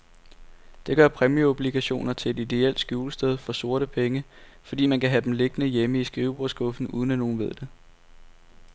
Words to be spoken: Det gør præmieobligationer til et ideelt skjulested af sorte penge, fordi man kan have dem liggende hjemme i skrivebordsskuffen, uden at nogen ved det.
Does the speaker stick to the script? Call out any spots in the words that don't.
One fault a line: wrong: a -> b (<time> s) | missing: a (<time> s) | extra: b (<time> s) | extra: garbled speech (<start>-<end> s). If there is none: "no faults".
wrong: af -> for (3.4 s)